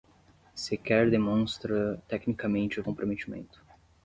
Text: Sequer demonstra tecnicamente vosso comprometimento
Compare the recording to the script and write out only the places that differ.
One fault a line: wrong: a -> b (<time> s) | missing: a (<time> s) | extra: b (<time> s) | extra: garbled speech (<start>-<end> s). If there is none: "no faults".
missing: vosso (2.8 s)